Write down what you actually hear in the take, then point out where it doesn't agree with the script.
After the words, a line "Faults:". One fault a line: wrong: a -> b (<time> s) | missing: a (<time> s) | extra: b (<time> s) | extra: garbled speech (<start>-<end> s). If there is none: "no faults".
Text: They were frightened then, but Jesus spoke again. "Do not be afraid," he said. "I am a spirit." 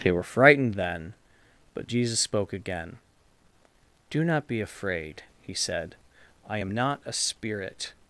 They were frightened then, but Jesus spoke again. "Do not be afraid," he said. "I am not a spirit."
Faults:
extra: not (6.7 s)